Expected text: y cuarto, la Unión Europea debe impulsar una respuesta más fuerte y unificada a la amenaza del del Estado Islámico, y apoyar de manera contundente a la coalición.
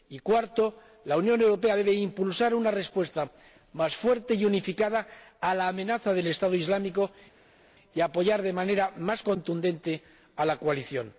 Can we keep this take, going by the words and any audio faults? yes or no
no